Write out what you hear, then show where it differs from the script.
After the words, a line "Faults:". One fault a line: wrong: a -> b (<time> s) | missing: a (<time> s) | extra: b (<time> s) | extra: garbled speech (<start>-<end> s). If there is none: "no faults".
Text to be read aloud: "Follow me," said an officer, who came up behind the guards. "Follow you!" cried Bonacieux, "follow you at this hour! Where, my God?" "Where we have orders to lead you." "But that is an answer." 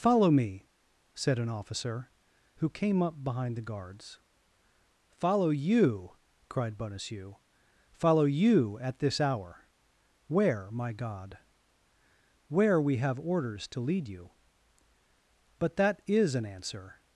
"Follow me," said an officer, who came up behind the guards. "Follow you!" cried Bonacieux, "follow you at this hour! Where, my God?" "Where we have orders to lead you." "But that is an answer."
Faults:
no faults